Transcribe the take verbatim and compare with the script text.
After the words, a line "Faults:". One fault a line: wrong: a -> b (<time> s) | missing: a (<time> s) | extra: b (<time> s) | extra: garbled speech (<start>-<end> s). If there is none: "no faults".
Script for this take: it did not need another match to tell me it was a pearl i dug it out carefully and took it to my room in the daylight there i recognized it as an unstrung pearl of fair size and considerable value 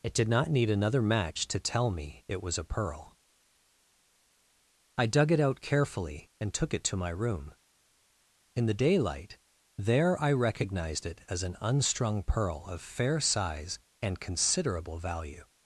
it did not need another match to tell me it was a pearl i dug it out carefully and took it to my room in the daylight there i recognized it as an unstrung pearl of fair size and considerable value
Faults:
no faults